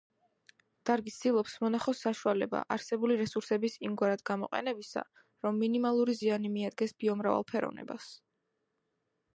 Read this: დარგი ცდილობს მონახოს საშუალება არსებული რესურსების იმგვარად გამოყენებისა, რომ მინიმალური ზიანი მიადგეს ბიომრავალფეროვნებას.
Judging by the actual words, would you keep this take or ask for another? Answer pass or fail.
pass